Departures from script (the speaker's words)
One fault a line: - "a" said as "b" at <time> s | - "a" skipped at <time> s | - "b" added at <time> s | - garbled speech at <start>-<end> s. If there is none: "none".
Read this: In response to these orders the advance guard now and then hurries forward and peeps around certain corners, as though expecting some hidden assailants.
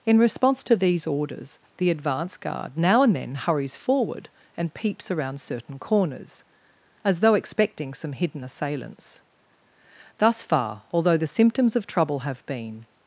- "Thus far although the symptoms of trouble have been" added at 10.2 s